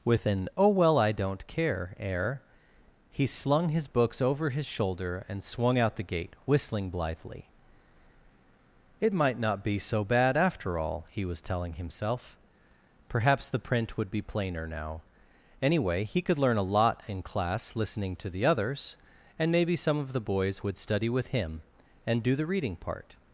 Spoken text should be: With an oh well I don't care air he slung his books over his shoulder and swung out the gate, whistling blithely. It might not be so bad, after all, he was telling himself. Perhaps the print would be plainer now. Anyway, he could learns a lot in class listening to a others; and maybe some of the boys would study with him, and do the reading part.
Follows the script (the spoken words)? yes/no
no